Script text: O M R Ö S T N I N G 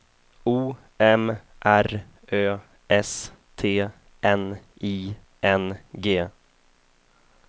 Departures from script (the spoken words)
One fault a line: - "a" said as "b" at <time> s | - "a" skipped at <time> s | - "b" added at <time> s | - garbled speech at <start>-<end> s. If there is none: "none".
none